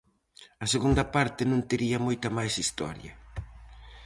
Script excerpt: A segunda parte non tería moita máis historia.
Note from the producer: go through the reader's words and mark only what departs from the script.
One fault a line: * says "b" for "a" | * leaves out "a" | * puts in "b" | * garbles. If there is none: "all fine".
all fine